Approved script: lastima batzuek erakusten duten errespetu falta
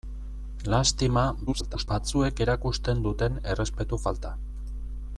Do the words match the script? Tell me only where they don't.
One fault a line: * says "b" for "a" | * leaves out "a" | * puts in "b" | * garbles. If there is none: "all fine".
* garbles